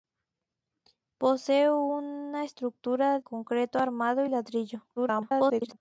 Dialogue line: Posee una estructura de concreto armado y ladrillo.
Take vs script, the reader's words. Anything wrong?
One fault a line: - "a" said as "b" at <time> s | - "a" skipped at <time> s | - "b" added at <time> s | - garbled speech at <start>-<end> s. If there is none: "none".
- "de" skipped at 3.2 s
- garbled speech at 5.0-5.8 s